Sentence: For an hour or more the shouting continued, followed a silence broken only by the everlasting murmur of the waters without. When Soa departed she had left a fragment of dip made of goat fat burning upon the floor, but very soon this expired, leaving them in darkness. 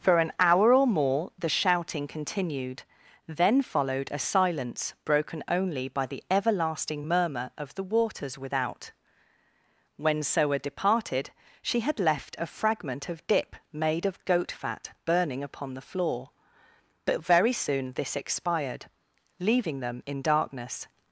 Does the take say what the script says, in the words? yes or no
no